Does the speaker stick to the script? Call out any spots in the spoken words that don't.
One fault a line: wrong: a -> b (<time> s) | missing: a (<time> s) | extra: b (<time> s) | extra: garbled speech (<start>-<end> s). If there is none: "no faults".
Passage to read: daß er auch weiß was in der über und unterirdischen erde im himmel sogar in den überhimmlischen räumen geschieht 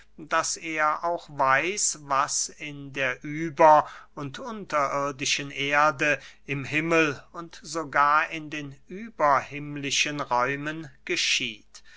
extra: und (7.3 s)